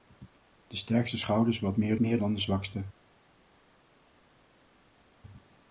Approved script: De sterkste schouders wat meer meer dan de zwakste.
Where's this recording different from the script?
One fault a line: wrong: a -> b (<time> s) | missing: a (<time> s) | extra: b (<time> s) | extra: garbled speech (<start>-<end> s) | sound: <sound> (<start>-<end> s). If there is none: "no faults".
no faults